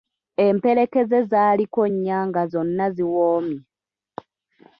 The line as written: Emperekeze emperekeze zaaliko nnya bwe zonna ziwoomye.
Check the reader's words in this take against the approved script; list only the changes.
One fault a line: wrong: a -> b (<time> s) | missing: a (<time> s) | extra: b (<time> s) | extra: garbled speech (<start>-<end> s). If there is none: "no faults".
missing: emperekeze (1.2 s)
wrong: bwe -> nga (2.3 s)